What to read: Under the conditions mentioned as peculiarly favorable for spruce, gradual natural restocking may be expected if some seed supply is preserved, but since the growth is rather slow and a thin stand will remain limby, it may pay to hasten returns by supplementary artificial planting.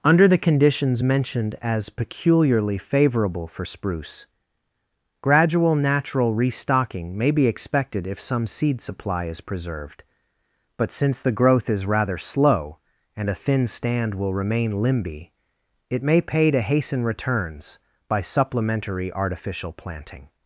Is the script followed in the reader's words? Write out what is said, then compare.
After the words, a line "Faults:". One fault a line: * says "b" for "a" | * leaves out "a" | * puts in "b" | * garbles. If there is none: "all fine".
Under the conditions mentioned as peculiarly favorable for spruce, gradual natural restocking may be expected if some seed supply is preserved, but since the growth is rather slow and a thin stand will remain limby, it may pay to hasten returns by supplementary artificial planting.
Faults:
all fine